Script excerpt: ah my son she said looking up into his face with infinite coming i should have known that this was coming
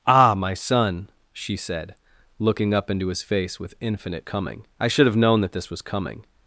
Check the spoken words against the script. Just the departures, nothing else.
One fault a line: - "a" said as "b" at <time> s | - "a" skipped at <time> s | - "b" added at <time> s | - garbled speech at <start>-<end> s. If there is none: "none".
none